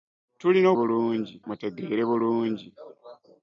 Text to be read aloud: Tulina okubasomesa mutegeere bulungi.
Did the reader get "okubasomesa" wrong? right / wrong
wrong